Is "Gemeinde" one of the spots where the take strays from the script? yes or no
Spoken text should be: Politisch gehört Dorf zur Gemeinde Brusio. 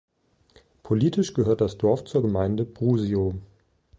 no